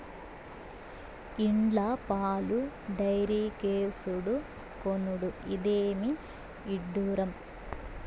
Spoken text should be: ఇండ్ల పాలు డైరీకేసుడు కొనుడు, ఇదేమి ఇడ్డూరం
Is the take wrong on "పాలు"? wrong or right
right